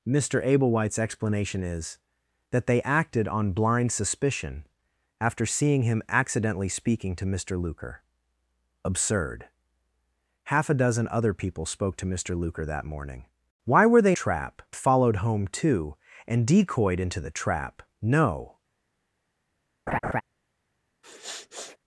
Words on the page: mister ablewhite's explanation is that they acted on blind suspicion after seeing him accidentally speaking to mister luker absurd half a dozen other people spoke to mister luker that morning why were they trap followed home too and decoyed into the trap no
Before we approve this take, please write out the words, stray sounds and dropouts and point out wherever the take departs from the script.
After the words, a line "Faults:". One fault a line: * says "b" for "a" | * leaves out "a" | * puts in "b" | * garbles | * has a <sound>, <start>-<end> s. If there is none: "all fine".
mister ablewhite's explanation is that they acted on blind suspicion after seeing him accidentally speaking to mister luker absurd half a dozen other people spoke to mister luker that morning why were they trap followed home too and decoyed into the trap no
Faults:
* has a laugh, 19.9-20.2 s
* has a sniff, 21.0-21.8 s